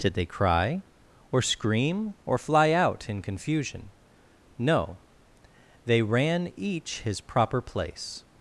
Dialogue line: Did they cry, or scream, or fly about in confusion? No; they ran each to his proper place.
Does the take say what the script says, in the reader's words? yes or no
no